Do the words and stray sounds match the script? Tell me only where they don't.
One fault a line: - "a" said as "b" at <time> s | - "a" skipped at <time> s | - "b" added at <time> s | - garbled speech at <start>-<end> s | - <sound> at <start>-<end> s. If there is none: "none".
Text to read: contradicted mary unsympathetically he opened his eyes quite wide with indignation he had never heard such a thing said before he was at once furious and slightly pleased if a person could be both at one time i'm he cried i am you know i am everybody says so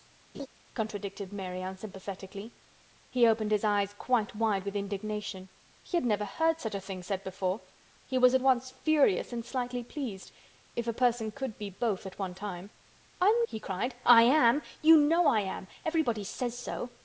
- laugh at 0.3-0.5 s